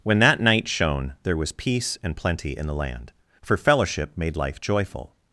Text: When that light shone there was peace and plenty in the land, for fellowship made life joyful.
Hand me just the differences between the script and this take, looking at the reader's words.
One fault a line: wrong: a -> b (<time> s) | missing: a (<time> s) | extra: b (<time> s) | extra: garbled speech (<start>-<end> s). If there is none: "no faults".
wrong: light -> night (0.4 s)